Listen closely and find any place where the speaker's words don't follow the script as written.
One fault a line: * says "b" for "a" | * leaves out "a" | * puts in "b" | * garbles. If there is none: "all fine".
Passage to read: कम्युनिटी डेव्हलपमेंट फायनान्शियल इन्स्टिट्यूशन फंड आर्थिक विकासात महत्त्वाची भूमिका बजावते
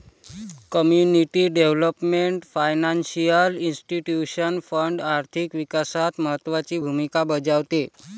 all fine